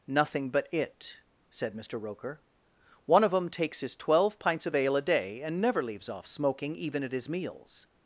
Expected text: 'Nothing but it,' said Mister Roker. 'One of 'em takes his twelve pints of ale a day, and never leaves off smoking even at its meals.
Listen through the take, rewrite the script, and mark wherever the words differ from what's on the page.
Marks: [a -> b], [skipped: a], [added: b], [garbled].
'Nothing but it,' said Mister Roker. 'One of 'em takes his twelve pints of ale a day, and never leaves off smoking even at [its -> his] meals.